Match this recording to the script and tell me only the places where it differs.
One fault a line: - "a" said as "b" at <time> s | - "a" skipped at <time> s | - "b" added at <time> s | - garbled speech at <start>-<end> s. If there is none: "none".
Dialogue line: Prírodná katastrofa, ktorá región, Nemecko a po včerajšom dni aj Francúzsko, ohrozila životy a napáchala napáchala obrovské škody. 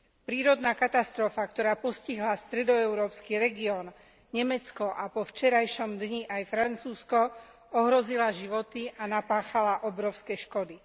- "postihla stredoeurópsky" added at 1.8 s
- "napáchala" skipped at 9.8 s